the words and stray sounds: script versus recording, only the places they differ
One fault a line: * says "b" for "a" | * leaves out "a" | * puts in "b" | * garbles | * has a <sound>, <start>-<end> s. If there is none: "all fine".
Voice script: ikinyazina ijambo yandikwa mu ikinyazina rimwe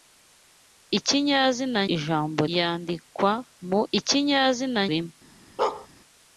* has a bark, 5.6-5.9 s